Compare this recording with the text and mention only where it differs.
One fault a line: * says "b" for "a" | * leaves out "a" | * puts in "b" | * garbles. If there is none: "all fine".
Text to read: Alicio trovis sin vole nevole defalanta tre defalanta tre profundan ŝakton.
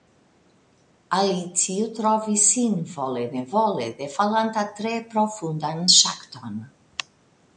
* leaves out "defalanta tre"